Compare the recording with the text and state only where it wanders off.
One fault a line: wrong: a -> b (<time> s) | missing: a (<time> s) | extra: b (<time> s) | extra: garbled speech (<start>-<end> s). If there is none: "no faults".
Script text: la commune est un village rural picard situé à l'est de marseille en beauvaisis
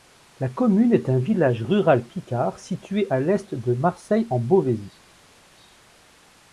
no faults